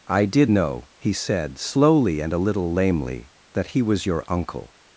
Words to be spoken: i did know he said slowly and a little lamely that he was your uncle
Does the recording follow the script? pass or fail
pass